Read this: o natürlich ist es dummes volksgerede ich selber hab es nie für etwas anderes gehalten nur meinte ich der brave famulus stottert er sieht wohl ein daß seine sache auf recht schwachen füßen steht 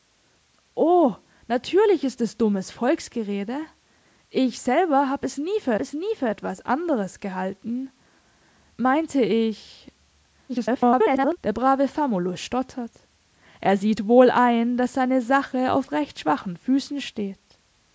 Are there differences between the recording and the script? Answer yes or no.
yes